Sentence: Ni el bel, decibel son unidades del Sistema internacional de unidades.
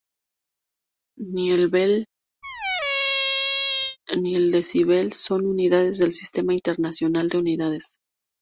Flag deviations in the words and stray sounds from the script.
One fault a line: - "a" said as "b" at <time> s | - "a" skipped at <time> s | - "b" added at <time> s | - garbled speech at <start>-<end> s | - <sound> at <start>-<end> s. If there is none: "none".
- squeak at 2.4-4.0 s
- "ni el" added at 4.2 s